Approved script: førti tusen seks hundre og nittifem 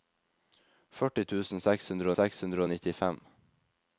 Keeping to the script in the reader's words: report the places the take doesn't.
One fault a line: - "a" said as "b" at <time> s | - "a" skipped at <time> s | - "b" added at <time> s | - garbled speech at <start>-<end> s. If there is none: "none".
- "seks hundre" added at 2.2 s